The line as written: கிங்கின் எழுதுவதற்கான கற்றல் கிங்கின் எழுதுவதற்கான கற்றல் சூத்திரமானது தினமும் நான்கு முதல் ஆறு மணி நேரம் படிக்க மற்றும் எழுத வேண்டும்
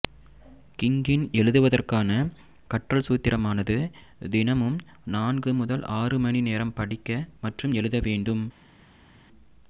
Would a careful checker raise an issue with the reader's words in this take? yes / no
yes